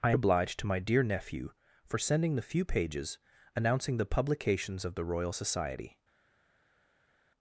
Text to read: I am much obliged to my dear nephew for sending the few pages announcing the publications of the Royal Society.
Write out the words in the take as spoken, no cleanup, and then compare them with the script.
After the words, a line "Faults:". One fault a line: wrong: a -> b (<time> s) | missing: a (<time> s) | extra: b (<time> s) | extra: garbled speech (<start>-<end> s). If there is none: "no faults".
I obliged to my dear nephew for sending the few pages announcing the publications of the Royal Society.
Faults:
missing: am much (0.1 s)